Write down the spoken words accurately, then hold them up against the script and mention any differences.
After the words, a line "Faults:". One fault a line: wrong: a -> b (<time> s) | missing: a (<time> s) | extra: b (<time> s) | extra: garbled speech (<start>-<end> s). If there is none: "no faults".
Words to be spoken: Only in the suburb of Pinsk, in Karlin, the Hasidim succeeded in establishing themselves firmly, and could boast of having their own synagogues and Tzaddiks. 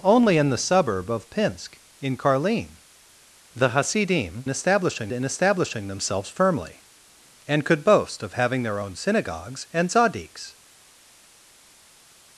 Only in the suburb of Pinsk, in Karlin, the Hasidim establishing in establishing themselves firmly, and could boast of having their own synagogues and Tzaddiks.
Faults:
wrong: succeeded -> establishing (4.5 s)